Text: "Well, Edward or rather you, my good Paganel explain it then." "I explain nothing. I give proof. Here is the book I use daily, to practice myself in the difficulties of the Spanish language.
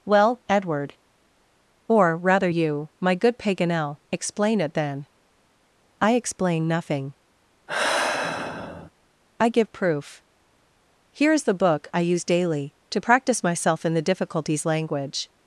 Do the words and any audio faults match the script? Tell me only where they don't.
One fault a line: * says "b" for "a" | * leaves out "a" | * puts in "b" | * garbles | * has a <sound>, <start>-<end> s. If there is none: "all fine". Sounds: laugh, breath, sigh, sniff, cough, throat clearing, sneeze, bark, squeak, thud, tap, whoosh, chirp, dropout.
* has a sigh, 7.7-8.9 s
* leaves out "of the Spanish"